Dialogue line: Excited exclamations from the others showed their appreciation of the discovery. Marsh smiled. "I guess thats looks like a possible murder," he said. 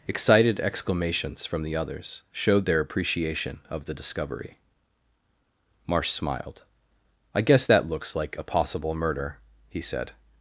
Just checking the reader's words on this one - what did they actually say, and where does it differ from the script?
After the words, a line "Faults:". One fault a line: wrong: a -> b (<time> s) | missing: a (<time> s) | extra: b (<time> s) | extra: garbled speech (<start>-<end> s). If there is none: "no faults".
Excited exclamations from the others showed their appreciation of the discovery. Marsh smiled. "I guess that looks like a possible murder," he said.
Faults:
wrong: thats -> that (7.6 s)